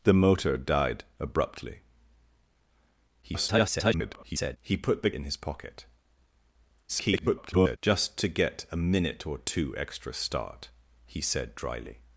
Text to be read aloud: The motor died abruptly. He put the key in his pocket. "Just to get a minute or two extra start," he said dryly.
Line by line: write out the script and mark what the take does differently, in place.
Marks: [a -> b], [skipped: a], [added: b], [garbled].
The motor died abruptly. [garbled] He put the [skipped: key] in his pocket. [garbled] "Just to get a minute or two extra start," he said dryly.